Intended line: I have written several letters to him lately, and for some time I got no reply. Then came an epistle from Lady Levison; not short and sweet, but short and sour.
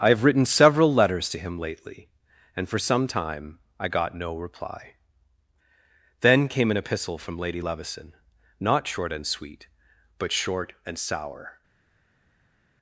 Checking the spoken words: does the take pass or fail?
pass